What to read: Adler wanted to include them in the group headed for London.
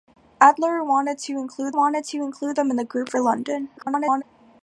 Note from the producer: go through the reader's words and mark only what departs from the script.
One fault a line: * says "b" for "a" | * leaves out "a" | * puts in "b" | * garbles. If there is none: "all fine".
* puts in "wanted to include"
* leaves out "headed"
* garbles